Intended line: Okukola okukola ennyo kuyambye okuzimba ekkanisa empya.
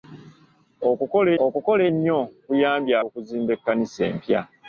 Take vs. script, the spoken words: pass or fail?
pass